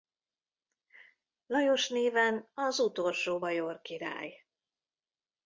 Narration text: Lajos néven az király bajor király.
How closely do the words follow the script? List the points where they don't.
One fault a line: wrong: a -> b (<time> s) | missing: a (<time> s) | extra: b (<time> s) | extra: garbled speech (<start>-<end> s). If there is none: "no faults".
wrong: király -> utolsó (2.8 s)